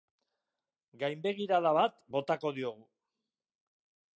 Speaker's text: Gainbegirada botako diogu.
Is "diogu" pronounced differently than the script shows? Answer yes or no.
no